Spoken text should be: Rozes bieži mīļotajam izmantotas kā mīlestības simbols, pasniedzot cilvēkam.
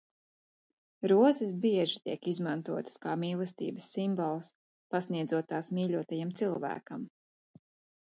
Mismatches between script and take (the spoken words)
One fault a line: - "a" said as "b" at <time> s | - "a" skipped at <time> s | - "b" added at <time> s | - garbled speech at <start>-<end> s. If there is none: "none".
- "mīļotajam" said as "tiek" at 2.1 s
- "tās mīļotajam" added at 5.5 s